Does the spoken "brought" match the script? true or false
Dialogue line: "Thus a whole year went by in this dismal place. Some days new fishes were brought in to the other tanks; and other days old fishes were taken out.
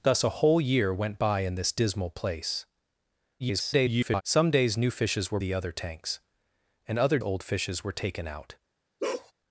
false